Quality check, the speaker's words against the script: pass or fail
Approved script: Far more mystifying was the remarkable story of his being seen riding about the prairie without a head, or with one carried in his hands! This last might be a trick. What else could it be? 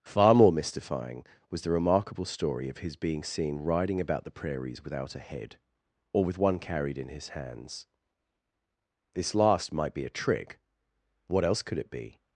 fail